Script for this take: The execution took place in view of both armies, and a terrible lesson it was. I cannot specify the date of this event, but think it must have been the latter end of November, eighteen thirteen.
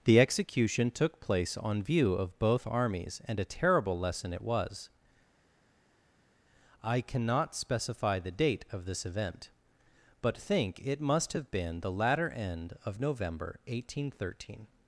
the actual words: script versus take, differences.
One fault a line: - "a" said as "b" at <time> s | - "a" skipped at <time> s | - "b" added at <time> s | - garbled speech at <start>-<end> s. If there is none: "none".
- "in" said as "on" at 1.6 s